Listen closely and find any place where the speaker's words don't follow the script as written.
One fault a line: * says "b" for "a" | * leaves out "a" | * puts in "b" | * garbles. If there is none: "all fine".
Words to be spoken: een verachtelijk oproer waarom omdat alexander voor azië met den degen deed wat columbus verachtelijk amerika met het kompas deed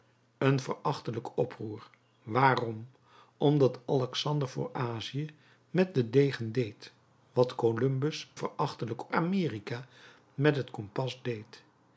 all fine